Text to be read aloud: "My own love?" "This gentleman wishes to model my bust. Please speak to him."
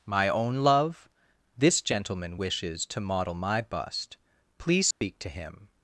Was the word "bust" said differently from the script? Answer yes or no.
no